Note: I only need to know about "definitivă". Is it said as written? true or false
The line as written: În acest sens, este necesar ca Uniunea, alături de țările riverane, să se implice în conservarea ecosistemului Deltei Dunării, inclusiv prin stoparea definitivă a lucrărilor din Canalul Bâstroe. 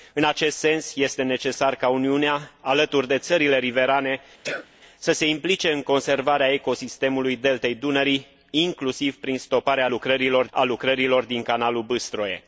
false